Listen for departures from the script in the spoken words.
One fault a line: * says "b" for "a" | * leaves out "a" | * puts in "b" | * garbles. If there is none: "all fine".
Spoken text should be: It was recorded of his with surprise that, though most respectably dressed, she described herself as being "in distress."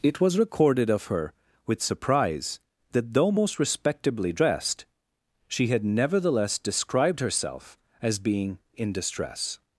* says "her" for "his"
* puts in "had nevertheless"